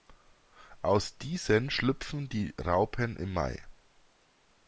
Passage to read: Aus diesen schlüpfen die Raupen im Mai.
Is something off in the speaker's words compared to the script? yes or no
no